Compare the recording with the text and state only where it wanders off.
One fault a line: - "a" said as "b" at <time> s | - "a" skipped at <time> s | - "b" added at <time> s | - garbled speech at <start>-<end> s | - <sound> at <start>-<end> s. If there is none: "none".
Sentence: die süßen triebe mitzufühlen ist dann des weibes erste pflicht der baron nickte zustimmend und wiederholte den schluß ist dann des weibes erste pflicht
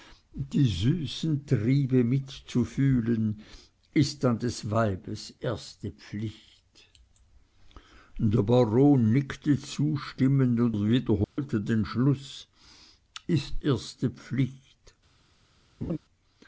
- dropout at 11.2-11.4 s
- "dann des weibes" skipped at 13.6 s
- laugh at 15.8-16.0 s